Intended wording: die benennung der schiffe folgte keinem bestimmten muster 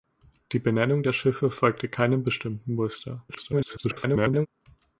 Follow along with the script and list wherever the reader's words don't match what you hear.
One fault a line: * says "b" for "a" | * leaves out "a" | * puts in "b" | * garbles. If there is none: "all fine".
* garbles